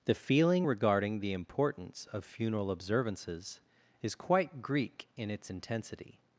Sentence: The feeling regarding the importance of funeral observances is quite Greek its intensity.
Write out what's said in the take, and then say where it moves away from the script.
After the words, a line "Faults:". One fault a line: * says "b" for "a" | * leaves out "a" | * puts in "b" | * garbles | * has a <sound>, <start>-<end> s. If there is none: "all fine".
The feeling regarding the importance of funeral observances is quite Greek in its intensity.
Faults:
* puts in "in"